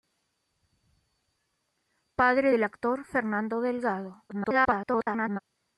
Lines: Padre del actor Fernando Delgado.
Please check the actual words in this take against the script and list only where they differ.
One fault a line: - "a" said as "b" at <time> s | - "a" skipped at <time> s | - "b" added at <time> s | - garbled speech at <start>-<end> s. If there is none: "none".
- garbled speech at 4.3-5.4 s